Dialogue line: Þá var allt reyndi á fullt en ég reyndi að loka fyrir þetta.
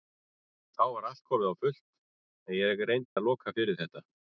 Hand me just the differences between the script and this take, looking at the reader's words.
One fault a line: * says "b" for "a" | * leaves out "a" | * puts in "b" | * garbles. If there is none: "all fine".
* says "komið" for "reyndi"